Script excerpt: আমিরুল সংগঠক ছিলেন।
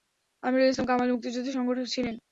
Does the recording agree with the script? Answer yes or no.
no